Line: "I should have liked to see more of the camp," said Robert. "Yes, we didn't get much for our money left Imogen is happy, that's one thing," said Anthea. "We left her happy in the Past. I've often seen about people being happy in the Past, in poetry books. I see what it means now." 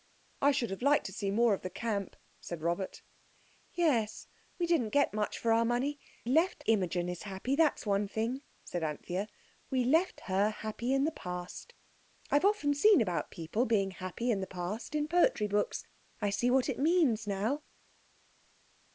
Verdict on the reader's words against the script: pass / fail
pass